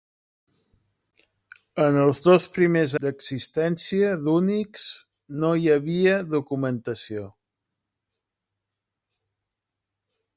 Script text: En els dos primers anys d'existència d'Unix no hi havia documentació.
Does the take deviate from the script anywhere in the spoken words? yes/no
yes